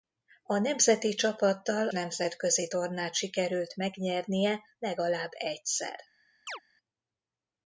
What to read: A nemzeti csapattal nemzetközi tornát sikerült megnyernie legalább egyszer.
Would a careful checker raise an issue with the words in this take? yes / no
no